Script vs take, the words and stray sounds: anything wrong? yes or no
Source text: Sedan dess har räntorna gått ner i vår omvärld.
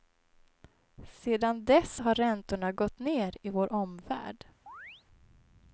yes